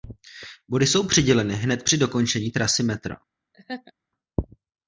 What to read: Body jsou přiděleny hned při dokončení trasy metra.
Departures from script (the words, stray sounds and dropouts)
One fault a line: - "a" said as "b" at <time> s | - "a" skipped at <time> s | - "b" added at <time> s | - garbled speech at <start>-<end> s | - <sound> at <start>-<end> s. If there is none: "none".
- laugh at 3.5-3.9 s